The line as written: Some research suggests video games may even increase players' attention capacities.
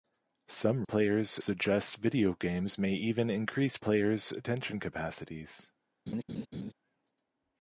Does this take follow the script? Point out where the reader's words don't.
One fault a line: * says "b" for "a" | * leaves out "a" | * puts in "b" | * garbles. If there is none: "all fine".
* says "players" for "research"